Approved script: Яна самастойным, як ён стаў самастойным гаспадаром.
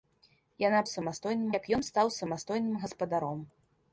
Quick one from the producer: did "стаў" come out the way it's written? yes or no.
yes